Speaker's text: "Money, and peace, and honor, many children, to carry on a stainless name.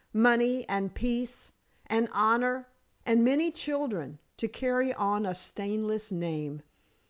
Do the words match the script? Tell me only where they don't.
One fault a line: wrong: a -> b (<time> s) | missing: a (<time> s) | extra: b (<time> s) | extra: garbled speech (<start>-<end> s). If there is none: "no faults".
extra: and (3.0 s)